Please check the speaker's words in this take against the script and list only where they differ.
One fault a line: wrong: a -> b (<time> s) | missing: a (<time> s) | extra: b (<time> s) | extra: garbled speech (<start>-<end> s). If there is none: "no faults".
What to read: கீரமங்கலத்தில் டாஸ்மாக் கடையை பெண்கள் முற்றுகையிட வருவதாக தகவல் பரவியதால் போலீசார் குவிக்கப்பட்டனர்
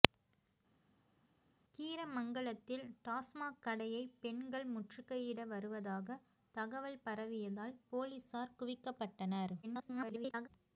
extra: garbled speech (9.6-10.5 s)